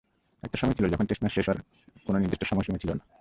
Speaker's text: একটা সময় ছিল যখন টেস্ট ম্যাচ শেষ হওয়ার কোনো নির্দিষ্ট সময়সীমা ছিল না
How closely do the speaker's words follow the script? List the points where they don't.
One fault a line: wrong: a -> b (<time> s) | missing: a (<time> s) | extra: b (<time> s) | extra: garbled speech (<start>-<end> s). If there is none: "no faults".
no faults